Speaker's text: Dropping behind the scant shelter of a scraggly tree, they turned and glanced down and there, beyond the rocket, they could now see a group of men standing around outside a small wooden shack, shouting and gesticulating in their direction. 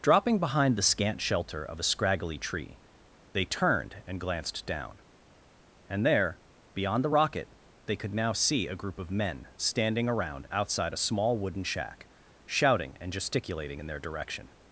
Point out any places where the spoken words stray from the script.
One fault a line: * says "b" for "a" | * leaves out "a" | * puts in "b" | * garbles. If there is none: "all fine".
all fine